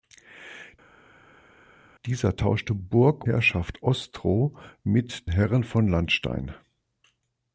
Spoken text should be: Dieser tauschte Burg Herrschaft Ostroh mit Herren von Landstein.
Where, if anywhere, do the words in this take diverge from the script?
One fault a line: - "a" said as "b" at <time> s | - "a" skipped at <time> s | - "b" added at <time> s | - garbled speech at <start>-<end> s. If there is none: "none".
none